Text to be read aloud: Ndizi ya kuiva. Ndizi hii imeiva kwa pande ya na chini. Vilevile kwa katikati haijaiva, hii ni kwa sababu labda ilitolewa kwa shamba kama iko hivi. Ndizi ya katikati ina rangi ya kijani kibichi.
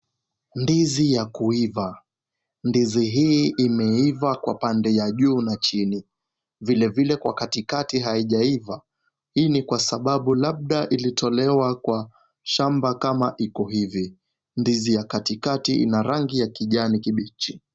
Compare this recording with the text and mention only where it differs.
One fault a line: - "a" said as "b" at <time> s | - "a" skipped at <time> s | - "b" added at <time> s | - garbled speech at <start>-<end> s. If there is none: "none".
- "juu" added at 5.1 s